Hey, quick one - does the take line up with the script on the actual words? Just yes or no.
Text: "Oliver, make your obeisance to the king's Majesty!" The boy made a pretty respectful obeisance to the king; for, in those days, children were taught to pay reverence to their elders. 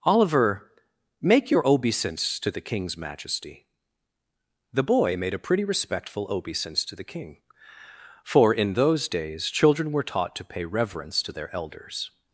yes